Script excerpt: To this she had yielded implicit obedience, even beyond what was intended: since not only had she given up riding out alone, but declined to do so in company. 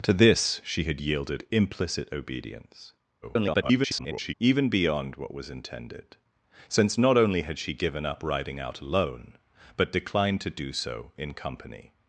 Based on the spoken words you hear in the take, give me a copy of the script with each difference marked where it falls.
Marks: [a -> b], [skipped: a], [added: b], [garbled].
To this she had yielded implicit obedience, [garbled] even beyond what was intended: since not only had she given up riding out alone, but declined to do so in company.